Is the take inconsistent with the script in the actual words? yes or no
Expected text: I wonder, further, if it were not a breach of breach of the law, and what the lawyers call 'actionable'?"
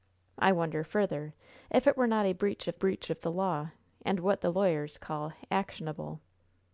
no